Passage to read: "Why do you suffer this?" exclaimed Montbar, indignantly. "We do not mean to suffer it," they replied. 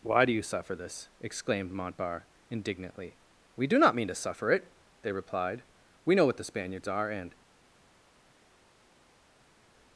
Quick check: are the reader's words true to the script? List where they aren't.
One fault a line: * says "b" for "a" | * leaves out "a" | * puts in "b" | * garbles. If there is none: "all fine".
* puts in "We know what the Spaniards are and"